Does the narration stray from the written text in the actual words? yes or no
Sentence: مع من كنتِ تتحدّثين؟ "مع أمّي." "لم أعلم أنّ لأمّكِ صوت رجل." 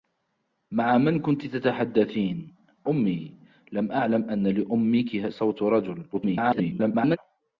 yes